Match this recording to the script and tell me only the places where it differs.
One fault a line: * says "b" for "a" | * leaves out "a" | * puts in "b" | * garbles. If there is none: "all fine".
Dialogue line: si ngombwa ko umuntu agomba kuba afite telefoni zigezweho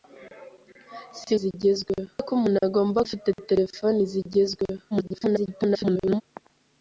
* says "zigezweho" for "ngombwa"
* leaves out "kuba"
* garbles